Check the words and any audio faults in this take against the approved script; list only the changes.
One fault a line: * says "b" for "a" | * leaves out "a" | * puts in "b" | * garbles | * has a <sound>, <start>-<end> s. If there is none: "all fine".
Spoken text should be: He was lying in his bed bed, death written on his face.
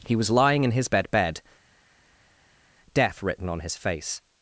all fine